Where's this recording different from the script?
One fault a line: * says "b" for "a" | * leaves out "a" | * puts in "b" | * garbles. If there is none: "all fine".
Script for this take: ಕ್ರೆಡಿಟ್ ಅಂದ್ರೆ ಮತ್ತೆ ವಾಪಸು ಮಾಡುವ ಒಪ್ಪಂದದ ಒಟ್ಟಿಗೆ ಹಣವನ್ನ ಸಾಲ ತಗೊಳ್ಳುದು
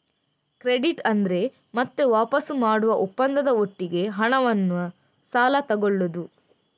all fine